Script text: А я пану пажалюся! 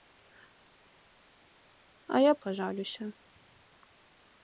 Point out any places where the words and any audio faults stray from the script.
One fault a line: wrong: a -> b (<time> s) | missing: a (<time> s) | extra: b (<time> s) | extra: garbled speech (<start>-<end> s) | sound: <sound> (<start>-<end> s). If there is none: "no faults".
missing: пану (2.3 s)